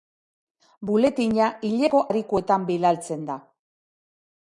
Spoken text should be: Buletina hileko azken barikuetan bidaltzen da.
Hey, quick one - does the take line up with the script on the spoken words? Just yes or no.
no